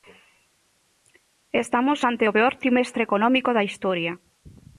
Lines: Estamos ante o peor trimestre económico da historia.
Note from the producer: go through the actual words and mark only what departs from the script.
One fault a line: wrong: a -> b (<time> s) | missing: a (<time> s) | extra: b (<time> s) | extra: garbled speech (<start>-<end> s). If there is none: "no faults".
no faults